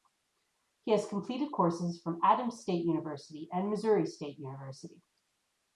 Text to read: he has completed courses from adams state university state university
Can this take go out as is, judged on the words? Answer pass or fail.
fail